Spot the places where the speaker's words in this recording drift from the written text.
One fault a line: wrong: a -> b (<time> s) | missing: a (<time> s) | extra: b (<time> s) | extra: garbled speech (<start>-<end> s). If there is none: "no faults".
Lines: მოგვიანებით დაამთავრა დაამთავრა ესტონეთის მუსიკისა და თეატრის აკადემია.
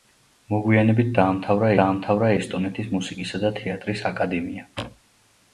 no faults